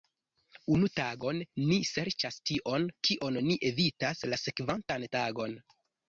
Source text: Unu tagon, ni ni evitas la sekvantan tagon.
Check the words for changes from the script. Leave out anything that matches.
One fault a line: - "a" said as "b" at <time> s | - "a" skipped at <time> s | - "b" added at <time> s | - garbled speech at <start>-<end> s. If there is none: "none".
- "serĉas tion kion" added at 1.9 s